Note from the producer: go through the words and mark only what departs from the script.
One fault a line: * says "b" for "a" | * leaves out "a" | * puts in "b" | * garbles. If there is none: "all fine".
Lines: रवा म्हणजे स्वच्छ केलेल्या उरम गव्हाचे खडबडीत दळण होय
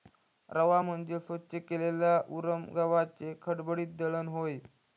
all fine